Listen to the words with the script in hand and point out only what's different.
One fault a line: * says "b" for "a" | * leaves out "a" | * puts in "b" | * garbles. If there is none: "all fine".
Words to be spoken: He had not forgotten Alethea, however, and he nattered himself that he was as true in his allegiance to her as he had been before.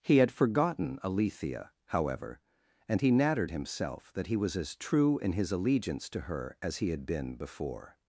* leaves out "not"